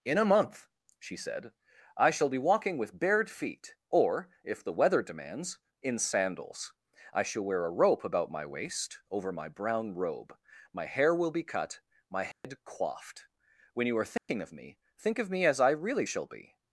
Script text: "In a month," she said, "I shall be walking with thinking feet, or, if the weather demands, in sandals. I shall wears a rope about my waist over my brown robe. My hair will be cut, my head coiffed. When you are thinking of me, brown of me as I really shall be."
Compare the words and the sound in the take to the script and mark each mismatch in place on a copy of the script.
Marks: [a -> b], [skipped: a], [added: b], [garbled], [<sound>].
"In a month," she said, "I shall be walking with [thinking -> bared] feet, or, if the weather demands, in sandals. I shall [wears -> wear] a rope about my waist over my brown robe. My hair will be cut, my head [dropout] coiffed. When you are thinking [dropout] of me, [brown -> think] of me as I really shall be."